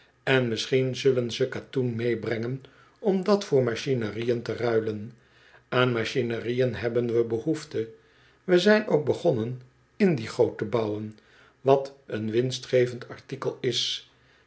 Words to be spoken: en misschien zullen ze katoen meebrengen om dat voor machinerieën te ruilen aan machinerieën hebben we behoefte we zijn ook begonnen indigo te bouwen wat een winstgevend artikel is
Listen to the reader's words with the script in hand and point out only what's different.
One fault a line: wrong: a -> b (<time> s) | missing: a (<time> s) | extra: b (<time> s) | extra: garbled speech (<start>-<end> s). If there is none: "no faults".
no faults